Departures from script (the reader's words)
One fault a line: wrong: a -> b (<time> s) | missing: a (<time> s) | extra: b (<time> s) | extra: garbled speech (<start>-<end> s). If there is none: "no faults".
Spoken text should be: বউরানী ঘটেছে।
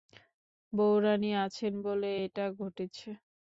extra: আছেন বলে এটা (1.4 s)